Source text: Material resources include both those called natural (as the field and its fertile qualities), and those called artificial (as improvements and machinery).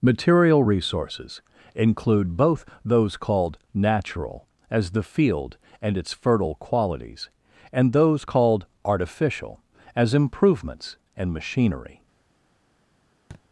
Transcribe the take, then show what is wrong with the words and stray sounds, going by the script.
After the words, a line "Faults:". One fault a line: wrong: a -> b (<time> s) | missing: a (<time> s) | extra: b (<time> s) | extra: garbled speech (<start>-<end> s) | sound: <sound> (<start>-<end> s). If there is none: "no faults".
Material resources include both those called natural (as the field and its fertile qualities), and those called artificial (as improvements and machinery).
Faults:
sound: thud (13.3-13.4 s)